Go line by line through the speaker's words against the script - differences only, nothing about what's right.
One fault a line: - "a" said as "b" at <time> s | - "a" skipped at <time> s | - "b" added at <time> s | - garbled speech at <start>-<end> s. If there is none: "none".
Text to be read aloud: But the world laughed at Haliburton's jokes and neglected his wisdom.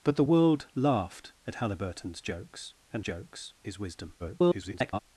- "neglected" said as "jokes" at 3.0 s
- garbled speech at 4.2-5.0 s